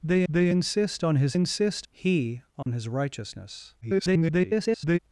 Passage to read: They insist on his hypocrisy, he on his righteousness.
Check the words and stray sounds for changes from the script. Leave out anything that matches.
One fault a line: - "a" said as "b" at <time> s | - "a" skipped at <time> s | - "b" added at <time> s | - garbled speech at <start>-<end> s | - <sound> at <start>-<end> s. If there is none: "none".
- "they" added at 0.3 s
- "hypocrisy" said as "insist" at 1.3 s
- dropout at 2.6-2.7 s
- garbled speech at 3.8-5.0 s